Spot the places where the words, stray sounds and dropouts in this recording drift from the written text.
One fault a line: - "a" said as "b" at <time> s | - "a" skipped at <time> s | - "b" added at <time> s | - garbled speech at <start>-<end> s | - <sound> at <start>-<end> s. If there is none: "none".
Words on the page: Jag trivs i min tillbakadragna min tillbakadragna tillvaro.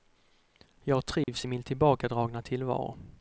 - dropout at 1.2-1.3 s
- "min tillbakadragna" skipped at 2.4 s